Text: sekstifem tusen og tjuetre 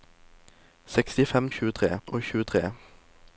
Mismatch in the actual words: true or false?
true